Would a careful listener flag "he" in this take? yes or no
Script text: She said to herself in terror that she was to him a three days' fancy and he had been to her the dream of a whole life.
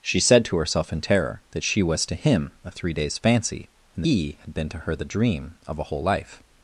no